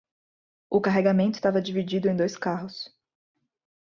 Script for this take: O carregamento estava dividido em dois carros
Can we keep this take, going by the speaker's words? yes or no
yes